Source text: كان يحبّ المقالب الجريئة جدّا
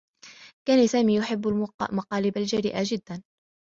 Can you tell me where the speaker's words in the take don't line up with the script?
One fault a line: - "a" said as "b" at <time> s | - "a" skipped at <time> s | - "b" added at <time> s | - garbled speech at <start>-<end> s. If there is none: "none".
- "سامي" added at 0.8 s